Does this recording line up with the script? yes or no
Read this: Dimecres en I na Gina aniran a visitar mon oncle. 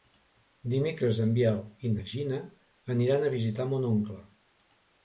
no